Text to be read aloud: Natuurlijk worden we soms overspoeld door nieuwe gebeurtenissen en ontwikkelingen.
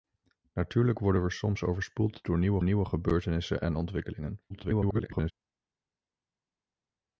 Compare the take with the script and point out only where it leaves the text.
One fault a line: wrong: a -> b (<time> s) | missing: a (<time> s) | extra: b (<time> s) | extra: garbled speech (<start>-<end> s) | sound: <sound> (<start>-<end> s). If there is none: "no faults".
extra: nieuwe (2.6 s)
extra: garbled speech (4.5-5.3 s)